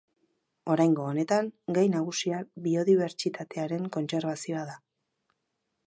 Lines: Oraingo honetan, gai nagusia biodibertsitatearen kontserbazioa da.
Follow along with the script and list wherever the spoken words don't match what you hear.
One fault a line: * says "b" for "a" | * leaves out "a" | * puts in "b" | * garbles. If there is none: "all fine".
all fine